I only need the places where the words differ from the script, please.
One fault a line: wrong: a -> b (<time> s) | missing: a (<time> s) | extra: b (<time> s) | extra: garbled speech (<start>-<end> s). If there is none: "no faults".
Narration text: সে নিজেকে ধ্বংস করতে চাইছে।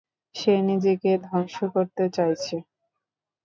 no faults